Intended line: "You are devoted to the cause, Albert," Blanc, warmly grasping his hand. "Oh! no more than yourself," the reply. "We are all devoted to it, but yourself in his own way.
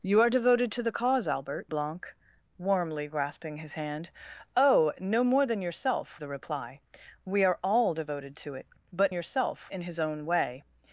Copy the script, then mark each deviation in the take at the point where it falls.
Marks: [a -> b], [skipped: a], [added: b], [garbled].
"You are devoted to the cause, Albert," Blanc, warmly grasping his hand. "Oh! no more than yourself," the reply. "We are all devoted to it, but yourself in his own way.